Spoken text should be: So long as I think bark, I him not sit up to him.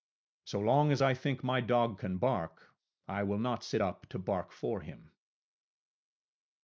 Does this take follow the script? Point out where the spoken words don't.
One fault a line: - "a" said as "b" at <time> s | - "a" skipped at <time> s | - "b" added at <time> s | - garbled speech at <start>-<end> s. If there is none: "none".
- "my dog can" added at 1.4 s
- "him" said as "will" at 3.2 s
- "bark for" added at 4.2 s